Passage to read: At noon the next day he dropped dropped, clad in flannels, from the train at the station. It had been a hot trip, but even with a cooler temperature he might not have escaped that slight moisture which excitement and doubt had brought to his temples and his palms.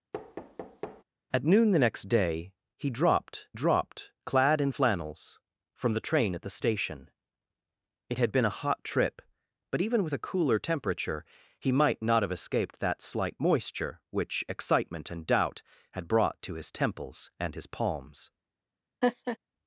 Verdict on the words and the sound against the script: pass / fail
fail